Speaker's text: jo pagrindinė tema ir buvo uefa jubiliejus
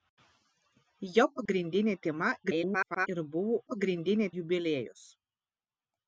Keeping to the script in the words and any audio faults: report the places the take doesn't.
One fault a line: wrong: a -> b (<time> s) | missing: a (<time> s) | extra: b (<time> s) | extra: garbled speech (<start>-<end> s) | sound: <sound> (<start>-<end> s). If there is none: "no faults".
sound: dropout (1.5-1.5 s)
extra: garbled speech (2.4-3.1 s)
wrong: uefa -> pagrindinė (3.7 s)